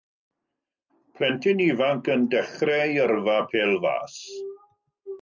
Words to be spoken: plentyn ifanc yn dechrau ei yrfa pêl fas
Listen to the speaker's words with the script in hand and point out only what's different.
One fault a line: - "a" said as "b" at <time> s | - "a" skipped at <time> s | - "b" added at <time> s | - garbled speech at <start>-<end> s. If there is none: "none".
none